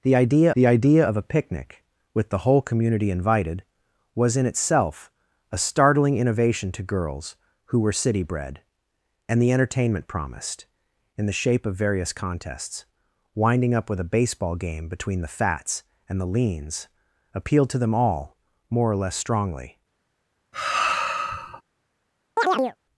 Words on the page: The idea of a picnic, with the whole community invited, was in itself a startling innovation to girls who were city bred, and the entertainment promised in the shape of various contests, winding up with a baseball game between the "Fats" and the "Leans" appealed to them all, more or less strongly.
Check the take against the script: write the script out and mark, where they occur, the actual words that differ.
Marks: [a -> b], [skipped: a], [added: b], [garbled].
The idea [added: the idea] of a picnic, with the whole community invited, was in itself a startling innovation to girls who were city bred, and the entertainment promised in the shape of various contests, winding up with a baseball game between the "Fats" and the "Leans" appealed to them all, more or less strongly.